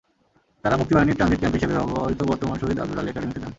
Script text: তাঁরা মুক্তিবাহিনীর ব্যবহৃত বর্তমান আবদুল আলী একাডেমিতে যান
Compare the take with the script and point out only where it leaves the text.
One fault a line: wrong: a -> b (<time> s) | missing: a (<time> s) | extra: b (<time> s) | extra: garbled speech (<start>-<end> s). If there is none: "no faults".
extra: ট্রানজিট ক্যাম্প হিসেবে (1.2 s)
extra: শহীদ (2.6 s)